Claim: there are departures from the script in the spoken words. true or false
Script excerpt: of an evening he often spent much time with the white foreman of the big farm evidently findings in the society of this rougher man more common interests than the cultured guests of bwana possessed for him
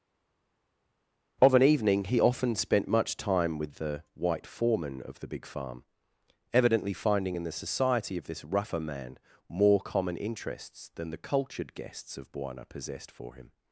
true